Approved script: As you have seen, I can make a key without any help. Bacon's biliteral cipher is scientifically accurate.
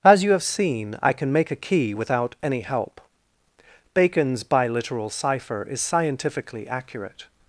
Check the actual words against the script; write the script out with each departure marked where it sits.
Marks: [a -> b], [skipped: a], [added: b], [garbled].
As you have seen, I can make a key without any help. Bacon's biliteral cipher is scientifically accurate.